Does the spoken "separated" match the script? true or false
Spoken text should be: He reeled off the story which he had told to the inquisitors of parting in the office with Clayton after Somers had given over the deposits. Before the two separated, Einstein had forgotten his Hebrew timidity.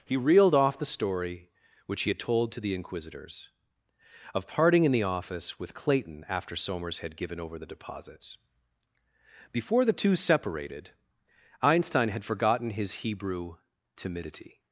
true